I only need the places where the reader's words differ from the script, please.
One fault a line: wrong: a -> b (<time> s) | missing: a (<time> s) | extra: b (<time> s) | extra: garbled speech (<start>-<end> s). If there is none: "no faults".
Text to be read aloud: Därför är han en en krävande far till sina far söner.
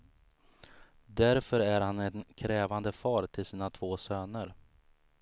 missing: en (2.2 s)
wrong: far -> två (3.7 s)